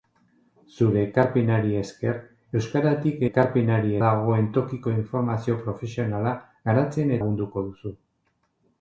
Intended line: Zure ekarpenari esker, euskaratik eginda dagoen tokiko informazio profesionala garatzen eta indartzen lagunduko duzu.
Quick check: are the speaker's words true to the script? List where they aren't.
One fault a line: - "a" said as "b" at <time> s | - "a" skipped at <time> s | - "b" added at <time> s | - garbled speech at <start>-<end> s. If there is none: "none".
- "eginda" said as "ekarpenari" at 3.3 s
- "eta indartzen" skipped at 7.2 s